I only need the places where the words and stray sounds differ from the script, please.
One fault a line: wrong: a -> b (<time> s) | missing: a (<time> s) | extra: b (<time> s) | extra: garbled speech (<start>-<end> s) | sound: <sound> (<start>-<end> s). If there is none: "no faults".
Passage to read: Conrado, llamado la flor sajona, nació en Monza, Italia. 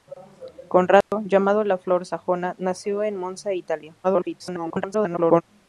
sound: dropout (1.0-1.1 s)
extra: garbled speech (4.0-5.4 s)